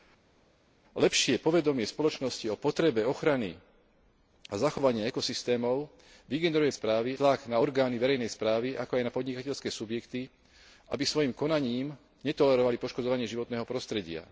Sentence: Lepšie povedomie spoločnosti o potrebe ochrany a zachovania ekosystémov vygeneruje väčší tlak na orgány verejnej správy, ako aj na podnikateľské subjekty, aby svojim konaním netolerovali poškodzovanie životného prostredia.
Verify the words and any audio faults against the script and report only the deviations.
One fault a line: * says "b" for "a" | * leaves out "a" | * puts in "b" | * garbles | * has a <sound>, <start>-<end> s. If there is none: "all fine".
* says "správy" for "väčší"